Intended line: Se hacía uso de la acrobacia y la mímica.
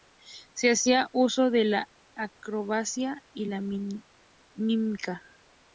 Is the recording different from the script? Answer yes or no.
no